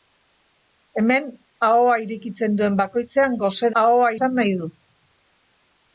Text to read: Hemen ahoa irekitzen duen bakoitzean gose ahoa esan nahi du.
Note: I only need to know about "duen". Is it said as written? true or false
true